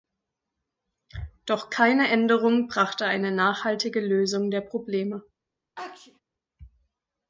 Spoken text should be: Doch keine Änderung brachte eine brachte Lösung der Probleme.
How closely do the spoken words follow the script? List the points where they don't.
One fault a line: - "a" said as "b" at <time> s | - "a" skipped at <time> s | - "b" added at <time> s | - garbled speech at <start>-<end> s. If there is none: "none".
- "brachte" said as "nachhaltige" at 3.3 s